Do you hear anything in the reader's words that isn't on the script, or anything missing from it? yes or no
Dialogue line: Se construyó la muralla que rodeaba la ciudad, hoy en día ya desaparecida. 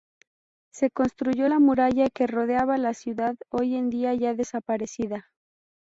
no